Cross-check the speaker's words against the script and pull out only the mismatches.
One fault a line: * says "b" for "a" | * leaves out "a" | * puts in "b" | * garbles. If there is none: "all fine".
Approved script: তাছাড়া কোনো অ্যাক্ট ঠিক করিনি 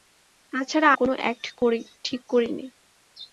all fine